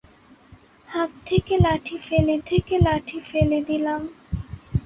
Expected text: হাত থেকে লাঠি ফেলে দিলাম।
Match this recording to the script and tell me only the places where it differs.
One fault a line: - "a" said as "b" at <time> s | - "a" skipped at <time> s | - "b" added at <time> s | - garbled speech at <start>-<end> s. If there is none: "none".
- "থেকে লাঠি ফেলে" added at 2.4 s